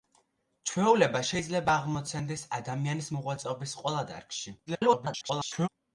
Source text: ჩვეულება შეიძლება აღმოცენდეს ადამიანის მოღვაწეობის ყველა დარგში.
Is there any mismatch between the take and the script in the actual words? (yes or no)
yes